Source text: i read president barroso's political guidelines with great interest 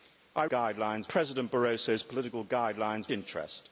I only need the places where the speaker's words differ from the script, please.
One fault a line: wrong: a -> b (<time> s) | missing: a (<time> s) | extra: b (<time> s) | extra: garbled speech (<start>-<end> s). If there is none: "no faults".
wrong: read -> guidelines (0.4 s)
missing: with great (3.1 s)